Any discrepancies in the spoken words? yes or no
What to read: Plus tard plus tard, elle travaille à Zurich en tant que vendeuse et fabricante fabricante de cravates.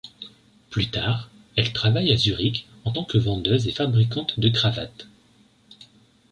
yes